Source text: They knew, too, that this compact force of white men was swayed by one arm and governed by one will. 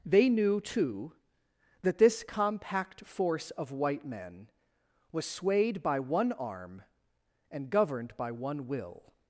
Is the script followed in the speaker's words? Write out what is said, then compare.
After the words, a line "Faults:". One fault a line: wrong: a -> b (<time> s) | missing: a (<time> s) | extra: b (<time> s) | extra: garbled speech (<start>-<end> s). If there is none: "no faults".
They knew, too, that this compact force of white men was swayed by one arm and governed by one will.
Faults:
no faults